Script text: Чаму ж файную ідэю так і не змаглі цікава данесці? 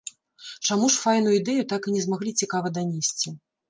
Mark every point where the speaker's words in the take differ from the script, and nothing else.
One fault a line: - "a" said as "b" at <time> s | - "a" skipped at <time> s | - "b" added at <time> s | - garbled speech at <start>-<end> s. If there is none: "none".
none